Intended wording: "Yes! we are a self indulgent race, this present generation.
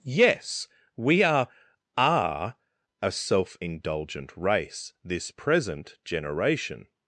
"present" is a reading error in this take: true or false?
false